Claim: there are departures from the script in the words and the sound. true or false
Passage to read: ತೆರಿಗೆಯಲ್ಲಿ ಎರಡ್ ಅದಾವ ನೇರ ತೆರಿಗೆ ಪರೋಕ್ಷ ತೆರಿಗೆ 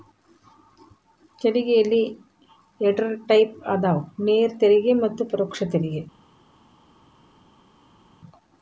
true